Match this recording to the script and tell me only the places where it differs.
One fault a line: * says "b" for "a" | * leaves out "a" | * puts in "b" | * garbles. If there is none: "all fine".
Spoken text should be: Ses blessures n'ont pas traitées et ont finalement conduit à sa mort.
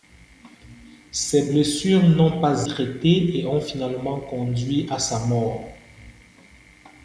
all fine